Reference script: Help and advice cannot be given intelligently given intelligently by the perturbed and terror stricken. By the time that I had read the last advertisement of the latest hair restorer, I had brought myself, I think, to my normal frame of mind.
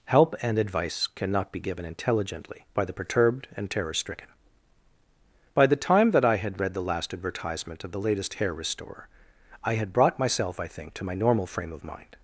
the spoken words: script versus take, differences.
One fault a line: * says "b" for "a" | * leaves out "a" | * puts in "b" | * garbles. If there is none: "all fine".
* leaves out "given intelligently"